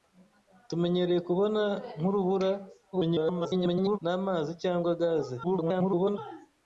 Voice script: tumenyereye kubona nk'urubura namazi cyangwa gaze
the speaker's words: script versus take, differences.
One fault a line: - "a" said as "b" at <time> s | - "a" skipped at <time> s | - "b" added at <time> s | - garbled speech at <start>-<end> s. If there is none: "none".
- garbled speech at 2.9-4.0 s
- garbled speech at 5.4-6.2 s